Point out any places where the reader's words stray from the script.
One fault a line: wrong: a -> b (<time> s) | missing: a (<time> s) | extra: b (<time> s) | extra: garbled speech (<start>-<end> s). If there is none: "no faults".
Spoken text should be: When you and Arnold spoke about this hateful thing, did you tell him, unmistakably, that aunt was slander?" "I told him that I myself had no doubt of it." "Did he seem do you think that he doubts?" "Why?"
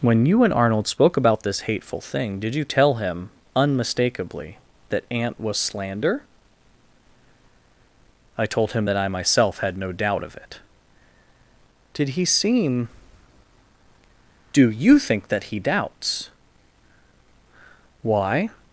no faults